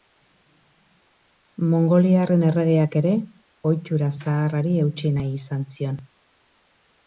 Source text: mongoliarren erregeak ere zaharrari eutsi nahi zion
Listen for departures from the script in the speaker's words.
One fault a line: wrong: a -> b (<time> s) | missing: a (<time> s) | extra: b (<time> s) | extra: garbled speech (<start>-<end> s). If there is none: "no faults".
extra: ohitura (3.7 s)
extra: izan (5.4 s)